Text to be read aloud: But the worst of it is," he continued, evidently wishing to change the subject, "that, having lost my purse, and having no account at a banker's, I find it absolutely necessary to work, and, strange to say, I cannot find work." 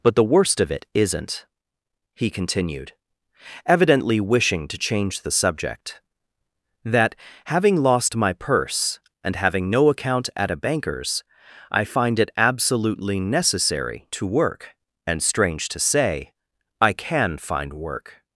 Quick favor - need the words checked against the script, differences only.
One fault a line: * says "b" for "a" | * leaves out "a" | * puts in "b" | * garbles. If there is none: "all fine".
* says "isn't" for "is"
* says "can" for "cannot"